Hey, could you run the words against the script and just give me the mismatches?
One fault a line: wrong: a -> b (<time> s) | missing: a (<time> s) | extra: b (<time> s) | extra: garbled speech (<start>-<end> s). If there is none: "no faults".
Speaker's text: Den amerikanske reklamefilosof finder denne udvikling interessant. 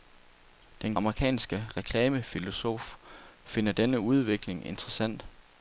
no faults